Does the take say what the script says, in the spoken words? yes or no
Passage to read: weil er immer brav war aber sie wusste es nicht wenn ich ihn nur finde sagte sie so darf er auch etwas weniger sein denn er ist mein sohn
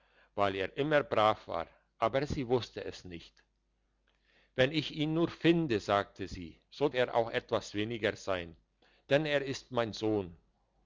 no